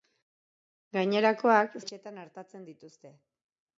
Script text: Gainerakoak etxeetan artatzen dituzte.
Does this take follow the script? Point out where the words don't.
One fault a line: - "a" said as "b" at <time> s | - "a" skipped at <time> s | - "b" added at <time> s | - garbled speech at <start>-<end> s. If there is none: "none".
none